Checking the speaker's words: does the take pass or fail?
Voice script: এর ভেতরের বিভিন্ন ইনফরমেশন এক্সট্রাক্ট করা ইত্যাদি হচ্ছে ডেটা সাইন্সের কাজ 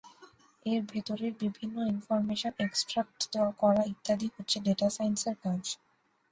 pass